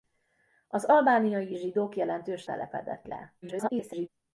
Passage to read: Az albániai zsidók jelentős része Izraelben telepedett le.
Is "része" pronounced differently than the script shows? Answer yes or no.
yes